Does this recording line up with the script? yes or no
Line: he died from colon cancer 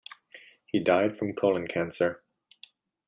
yes